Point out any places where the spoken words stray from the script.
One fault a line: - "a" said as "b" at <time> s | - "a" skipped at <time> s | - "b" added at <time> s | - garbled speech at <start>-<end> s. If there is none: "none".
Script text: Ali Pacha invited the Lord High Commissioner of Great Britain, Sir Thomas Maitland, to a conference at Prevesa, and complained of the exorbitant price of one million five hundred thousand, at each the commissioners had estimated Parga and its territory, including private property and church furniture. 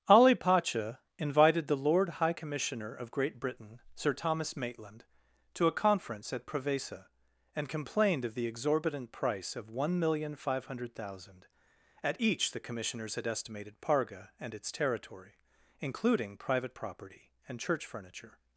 none